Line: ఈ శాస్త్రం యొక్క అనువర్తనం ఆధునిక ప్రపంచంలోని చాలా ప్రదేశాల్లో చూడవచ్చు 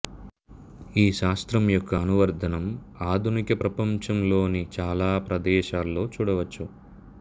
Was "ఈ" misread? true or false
false